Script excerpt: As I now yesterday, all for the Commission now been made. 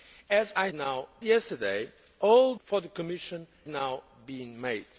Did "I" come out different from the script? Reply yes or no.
no